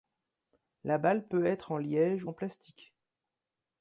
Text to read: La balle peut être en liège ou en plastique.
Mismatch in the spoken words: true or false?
true